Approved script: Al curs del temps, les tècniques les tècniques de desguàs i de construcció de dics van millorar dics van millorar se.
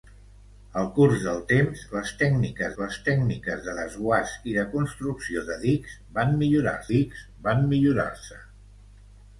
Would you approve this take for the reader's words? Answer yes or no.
yes